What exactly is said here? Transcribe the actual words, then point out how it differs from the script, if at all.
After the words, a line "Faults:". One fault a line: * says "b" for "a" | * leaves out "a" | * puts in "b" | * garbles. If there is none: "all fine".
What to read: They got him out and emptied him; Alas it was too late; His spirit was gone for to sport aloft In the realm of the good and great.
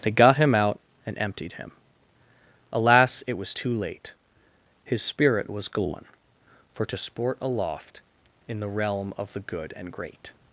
They got him out and emptied him; Alas it was too late; His spirit was gone for to sport aloft In the realm of the good and great.
Faults:
all fine